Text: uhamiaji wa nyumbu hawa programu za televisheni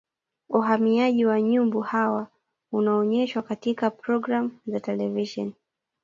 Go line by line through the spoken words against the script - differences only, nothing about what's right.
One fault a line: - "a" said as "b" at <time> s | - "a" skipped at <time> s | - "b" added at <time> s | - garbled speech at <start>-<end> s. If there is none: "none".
- "unaonyeshwa katika" added at 2.7 s